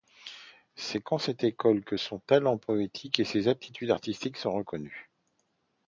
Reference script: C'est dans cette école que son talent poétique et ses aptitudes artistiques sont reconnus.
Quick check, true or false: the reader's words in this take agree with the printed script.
true